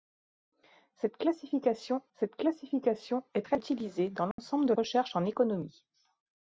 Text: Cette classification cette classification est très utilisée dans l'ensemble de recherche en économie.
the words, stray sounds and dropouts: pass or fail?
fail